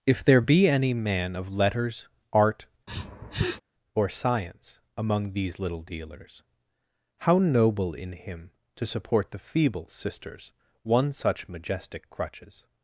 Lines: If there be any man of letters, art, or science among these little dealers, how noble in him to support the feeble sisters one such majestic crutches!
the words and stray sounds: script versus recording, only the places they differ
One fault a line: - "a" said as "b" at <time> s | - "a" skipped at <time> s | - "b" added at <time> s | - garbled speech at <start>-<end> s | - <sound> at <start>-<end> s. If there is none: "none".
- sniff at 2.9-3.6 s